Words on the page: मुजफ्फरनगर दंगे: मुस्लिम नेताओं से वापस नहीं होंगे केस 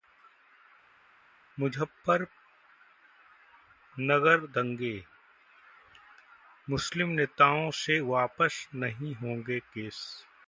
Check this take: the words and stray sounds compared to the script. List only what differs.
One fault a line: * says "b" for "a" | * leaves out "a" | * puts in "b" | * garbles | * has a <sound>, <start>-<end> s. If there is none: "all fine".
all fine